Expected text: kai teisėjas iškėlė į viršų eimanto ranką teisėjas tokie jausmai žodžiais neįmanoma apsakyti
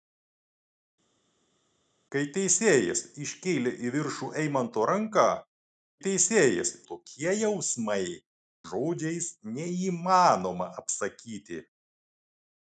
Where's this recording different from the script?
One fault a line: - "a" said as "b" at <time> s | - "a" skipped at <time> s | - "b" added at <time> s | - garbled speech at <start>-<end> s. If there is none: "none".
none